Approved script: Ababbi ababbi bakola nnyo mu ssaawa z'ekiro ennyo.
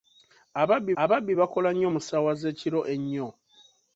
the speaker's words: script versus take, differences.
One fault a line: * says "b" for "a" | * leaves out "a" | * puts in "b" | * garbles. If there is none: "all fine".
all fine